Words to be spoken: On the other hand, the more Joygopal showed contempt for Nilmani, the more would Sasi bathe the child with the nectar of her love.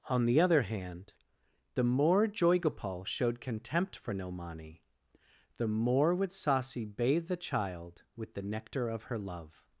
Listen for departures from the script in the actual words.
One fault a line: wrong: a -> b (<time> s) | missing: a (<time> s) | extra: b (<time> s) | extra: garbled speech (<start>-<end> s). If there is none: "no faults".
no faults